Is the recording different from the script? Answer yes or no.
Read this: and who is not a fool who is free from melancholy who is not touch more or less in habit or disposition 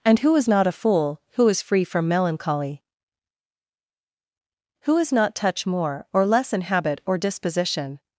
no